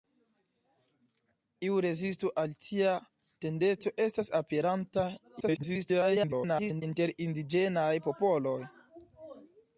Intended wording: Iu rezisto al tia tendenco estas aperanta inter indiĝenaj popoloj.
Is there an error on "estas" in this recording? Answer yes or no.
no